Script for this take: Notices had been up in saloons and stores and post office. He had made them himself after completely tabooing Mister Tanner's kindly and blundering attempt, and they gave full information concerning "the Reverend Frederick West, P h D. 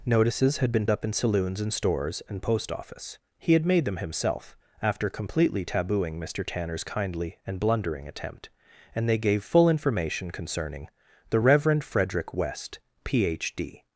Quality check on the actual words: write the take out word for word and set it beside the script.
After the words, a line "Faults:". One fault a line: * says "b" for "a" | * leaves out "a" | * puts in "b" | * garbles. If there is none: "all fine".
Notices had been up in saloons and stores and post office. He had made them himself after completely tabooing Mister Tanner's kindly and blundering attempt, and they gave full information concerning "the Reverend Frederick West, P h D.
Faults:
all fine